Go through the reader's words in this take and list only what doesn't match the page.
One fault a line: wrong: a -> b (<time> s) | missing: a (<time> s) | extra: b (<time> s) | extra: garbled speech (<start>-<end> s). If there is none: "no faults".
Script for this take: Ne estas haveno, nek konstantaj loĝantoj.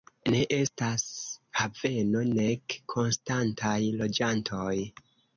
no faults